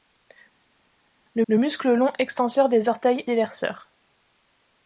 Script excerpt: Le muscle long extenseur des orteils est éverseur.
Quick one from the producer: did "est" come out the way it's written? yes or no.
no